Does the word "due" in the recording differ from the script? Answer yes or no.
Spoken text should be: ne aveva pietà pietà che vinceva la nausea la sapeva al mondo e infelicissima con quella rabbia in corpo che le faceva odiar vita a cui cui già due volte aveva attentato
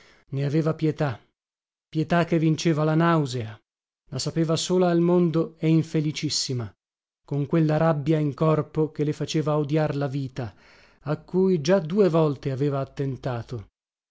no